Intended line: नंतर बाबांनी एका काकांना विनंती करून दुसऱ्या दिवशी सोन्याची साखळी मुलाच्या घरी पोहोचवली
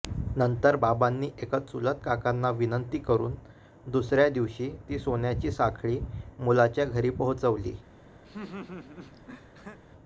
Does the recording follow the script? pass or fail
fail